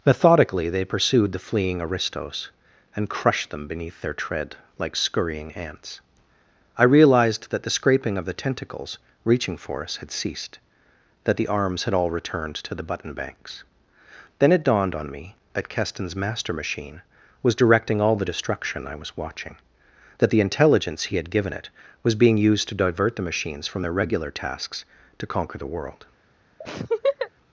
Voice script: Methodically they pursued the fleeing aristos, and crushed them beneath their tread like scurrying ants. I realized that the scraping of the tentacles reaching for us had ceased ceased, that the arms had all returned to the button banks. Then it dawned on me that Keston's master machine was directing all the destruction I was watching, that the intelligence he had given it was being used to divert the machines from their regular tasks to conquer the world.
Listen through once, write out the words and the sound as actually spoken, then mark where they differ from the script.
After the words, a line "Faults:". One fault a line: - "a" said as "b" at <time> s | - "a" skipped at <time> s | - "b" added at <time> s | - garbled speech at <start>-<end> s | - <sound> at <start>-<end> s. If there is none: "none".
Methodically they pursued the fleeing aristos, and crushed them beneath their tread like scurrying ants. I realized that the scraping of the tentacles reaching for us had ceased, that the arms had all returned to the button banks. Then it dawned on me that Keston's master machine was directing all the destruction I was watching, that the intelligence he had given it was being used to divert the machines from their regular tasks to conquer the world.
Faults:
- "ceased" skipped at 10.6 s
- laugh at 26.6-27.3 s